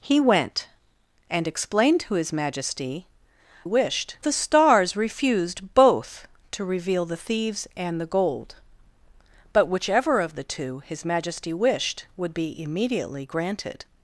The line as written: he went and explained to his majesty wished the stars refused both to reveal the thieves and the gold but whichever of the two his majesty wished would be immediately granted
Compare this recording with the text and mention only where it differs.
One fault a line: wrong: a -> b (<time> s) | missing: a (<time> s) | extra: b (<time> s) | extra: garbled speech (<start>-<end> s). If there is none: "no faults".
no faults